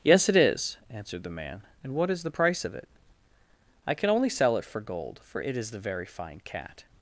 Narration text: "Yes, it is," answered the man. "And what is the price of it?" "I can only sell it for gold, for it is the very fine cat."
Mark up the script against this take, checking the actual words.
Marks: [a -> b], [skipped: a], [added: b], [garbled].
"Yes, it is," answered the man. "And what is the price of it?" "I can only sell it for gold, for it is the very fine cat."